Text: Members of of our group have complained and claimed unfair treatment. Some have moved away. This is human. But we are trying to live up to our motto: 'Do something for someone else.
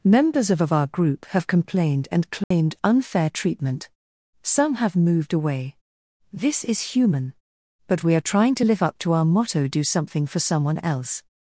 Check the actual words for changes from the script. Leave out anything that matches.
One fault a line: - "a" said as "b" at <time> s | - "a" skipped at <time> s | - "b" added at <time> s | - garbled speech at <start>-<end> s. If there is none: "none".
none